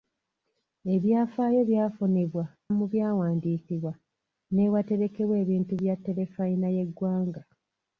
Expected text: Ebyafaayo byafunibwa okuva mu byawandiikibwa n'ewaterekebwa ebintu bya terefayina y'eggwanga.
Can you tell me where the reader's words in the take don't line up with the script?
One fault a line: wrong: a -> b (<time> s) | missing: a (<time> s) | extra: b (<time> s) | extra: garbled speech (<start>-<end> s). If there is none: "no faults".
missing: okuva (2.5 s)